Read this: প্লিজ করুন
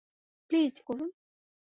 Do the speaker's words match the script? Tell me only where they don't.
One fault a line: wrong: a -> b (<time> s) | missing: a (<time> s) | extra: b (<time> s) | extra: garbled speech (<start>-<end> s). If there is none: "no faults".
no faults